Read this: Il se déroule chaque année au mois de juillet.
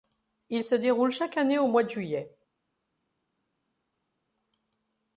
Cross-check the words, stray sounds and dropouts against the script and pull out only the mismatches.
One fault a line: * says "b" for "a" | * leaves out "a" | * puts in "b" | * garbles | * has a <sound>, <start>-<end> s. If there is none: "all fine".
all fine